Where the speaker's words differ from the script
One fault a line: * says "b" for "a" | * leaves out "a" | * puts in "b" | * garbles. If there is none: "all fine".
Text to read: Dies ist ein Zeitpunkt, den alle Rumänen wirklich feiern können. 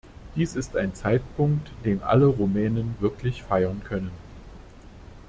all fine